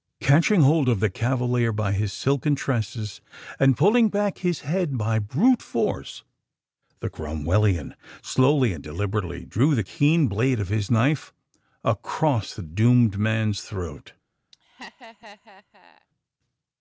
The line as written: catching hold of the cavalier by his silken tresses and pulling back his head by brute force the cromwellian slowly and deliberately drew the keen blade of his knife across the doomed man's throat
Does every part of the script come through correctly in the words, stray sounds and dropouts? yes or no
no